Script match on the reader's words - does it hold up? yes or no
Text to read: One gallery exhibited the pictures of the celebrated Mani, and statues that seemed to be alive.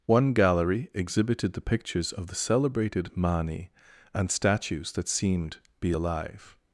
no